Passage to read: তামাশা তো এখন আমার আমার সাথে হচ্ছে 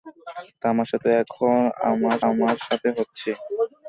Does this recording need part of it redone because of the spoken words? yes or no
no